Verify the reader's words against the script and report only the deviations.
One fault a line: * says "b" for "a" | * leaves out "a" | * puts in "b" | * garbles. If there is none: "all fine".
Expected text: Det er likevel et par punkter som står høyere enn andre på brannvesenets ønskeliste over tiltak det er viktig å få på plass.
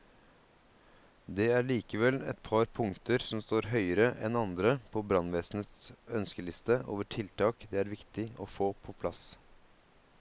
all fine